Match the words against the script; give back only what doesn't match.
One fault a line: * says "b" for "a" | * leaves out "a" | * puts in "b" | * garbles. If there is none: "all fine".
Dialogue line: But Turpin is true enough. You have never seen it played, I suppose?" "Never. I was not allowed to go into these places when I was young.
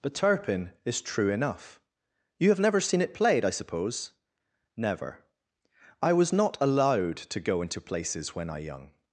* leaves out "these"
* leaves out "was"